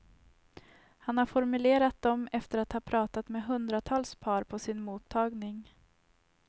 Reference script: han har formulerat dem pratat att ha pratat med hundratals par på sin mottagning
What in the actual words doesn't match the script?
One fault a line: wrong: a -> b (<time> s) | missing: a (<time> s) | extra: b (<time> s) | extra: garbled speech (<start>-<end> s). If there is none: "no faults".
wrong: pratat -> efter (2.3 s)